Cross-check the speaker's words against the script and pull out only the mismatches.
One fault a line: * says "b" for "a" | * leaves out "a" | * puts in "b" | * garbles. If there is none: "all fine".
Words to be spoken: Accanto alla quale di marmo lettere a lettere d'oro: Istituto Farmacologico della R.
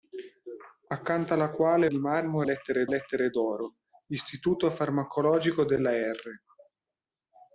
all fine